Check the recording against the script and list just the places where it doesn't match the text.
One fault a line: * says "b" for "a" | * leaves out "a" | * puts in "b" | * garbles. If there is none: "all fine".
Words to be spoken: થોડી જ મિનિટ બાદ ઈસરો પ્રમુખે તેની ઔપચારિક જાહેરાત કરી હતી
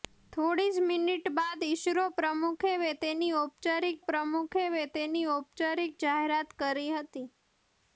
* puts in "પ્રમુખે તેની ઔપચારિક"